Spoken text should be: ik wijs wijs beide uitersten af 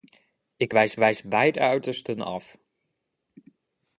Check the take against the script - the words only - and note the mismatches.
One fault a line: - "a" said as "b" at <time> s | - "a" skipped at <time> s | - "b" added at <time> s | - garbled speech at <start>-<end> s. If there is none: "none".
none